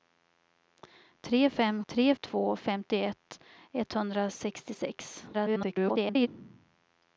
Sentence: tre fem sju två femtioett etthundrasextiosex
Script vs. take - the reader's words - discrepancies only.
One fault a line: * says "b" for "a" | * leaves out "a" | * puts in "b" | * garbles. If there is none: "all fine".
* says "tre" for "sju"
* garbles